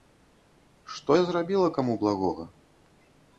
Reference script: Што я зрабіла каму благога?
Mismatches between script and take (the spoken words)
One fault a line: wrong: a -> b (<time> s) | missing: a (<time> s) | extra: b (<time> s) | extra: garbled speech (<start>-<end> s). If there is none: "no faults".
no faults